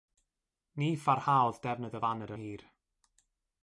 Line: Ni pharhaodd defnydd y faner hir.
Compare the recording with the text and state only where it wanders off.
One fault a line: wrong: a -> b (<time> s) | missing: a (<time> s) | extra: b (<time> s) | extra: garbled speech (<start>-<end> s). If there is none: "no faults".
no faults